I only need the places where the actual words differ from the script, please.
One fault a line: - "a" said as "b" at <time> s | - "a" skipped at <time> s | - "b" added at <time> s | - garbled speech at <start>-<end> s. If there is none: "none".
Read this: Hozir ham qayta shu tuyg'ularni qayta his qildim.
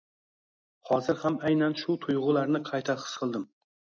- "qayta" said as "aynan" at 1.5 s